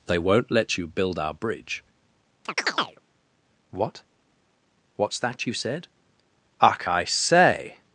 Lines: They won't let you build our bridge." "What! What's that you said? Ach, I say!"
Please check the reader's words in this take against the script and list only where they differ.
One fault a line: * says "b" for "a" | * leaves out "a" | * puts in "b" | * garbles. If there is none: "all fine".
all fine